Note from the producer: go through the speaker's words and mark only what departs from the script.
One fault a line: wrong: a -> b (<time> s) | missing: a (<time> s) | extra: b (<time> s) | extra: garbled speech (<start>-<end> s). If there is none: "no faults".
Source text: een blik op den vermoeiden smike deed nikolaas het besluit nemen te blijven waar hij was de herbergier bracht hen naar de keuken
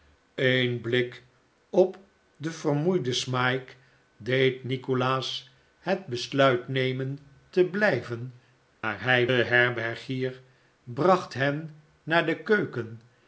missing: was de (9.3 s)